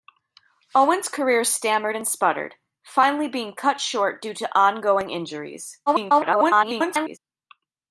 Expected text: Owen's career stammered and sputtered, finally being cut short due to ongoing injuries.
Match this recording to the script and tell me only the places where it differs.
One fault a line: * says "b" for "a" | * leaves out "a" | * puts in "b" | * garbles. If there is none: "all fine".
* garbles